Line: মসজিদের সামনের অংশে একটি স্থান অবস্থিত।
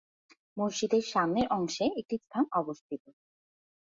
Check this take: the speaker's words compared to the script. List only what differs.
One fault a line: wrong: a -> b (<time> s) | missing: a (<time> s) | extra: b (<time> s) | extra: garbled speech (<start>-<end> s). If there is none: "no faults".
no faults